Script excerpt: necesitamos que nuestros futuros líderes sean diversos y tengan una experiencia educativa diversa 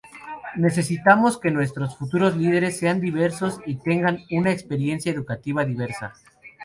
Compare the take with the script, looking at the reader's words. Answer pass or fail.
pass